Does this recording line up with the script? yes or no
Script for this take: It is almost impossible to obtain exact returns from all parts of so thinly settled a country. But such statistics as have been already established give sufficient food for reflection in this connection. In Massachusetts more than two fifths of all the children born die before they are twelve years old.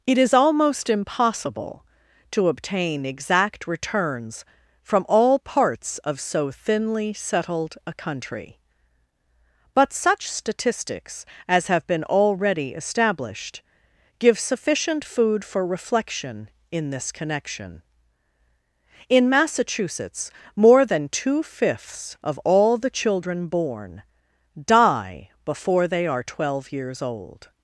yes